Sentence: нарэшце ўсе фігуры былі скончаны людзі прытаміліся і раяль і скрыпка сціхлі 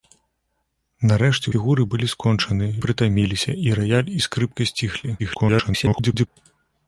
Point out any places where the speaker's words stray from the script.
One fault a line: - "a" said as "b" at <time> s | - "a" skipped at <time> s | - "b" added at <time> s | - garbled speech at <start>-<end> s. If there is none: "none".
- "ўсе" skipped at 1.5 s
- "людзі" skipped at 2.7 s
- garbled speech at 5.2-6.3 s